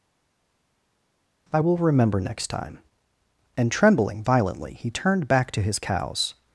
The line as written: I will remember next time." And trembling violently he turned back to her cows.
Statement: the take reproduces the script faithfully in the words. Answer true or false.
false